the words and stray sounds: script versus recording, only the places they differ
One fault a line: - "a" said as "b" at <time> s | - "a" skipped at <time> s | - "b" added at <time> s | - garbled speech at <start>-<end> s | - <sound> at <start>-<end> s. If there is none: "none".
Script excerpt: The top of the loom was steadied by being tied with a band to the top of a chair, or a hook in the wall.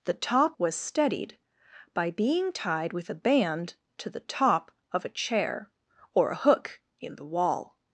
- "of the loom" skipped at 0.6 s